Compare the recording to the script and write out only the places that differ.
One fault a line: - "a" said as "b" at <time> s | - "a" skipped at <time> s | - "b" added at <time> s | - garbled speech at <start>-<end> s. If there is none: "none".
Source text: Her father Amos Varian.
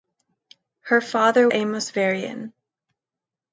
none